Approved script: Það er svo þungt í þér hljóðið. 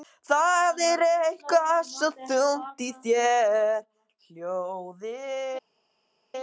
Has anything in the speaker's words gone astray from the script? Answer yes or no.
yes